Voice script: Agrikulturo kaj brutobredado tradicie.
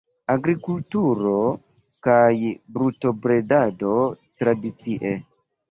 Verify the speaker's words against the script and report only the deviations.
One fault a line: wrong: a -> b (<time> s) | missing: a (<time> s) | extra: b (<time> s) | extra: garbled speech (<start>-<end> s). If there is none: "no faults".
no faults